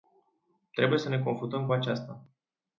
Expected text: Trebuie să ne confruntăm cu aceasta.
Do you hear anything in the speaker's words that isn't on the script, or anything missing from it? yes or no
no